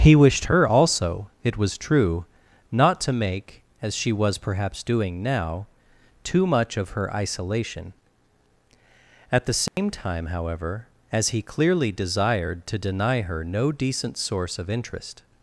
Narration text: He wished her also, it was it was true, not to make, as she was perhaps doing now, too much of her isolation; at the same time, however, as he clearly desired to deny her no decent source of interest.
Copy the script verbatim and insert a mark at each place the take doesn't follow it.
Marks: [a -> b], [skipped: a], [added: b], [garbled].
He wished her also, it was [skipped: it was] true, not to make, as she was perhaps doing now, too much of her isolation; at the same time, however, as he clearly desired to deny her no decent source of interest.